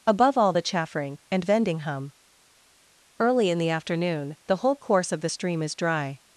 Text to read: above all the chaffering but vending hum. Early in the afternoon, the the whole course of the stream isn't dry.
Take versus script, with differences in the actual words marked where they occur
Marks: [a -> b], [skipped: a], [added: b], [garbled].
above all the chaffering [but -> and] vending hum. Early in the afternoon, the [skipped: the] whole course of the stream [isn't -> is] dry.